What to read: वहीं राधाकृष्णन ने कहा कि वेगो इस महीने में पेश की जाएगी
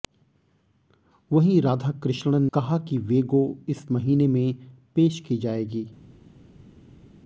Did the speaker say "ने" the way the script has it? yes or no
no